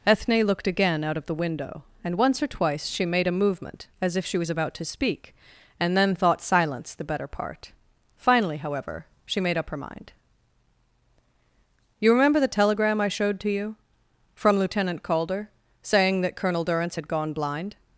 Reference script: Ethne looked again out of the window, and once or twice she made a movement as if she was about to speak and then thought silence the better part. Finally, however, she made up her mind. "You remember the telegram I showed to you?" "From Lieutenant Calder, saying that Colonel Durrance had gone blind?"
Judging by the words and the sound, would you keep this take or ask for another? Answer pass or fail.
pass